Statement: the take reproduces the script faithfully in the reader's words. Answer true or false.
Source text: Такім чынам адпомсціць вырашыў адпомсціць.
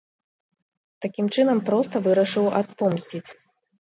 false